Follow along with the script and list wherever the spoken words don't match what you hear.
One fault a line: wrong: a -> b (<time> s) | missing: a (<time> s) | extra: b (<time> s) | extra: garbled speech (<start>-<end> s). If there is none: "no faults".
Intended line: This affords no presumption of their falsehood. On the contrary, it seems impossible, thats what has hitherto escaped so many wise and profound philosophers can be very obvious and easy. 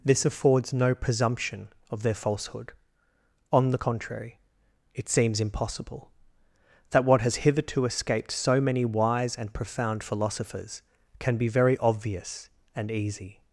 wrong: thats -> that (6.9 s)